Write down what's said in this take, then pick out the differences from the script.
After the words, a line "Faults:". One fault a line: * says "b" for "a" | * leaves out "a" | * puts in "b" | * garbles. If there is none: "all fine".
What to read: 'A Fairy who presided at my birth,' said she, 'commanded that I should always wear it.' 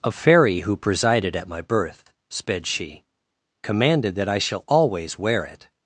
'A Fairy who presided at my birth,' sped she, 'commanded that I shall always wear it.'
Faults:
* says "sped" for "said"
* says "shall" for "should"